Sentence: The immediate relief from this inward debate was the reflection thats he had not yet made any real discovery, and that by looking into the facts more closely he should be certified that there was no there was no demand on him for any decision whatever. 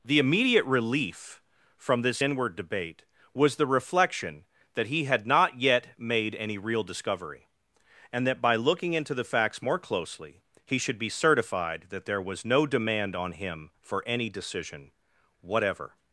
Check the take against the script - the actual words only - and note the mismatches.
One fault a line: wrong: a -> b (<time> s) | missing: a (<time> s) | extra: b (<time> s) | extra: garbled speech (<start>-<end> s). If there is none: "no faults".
wrong: thats -> that (4.7 s)
missing: there was no (12.6 s)